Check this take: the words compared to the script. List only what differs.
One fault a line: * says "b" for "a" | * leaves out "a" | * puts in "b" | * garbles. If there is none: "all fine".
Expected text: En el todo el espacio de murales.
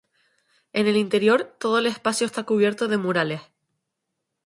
* puts in "interior"
* puts in "está cubierto"